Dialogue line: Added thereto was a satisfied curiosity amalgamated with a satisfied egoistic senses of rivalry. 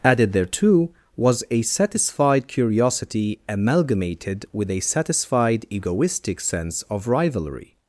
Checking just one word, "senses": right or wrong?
wrong